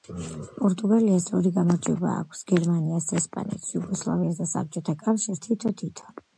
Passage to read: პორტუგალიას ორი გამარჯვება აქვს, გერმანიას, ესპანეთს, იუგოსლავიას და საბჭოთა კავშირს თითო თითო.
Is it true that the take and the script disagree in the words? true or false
false